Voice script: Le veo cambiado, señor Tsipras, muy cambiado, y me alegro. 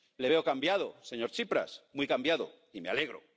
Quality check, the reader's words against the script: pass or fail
pass